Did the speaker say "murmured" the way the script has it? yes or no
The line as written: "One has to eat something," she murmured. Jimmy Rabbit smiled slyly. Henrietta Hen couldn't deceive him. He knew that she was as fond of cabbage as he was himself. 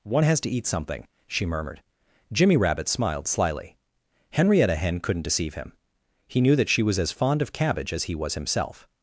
yes